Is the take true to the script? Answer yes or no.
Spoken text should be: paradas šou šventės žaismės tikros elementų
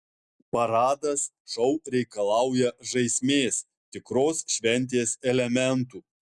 no